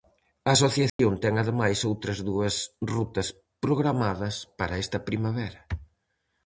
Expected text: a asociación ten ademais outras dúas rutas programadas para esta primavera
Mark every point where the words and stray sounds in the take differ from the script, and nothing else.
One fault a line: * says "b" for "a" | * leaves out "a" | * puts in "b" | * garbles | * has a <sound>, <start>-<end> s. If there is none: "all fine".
* has a dropout, 0.9-1.0 s